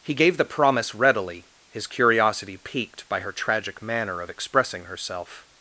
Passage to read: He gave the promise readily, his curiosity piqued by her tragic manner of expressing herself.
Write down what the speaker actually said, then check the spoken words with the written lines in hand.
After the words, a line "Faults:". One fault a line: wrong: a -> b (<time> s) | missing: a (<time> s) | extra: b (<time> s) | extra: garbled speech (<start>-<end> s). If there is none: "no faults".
He gave the promise readily, his curiosity piqued by her tragic manner of expressing herself.
Faults:
no faults